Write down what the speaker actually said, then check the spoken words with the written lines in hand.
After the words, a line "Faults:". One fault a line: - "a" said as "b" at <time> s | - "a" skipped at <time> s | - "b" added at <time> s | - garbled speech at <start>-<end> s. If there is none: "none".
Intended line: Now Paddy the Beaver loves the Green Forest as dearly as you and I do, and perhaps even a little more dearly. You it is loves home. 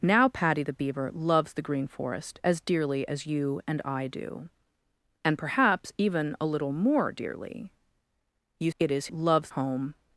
Now Paddy the Beaver loves the Green Forest as dearly as you and I do, and perhaps even a little more dearly. You it is loves home.
Faults:
none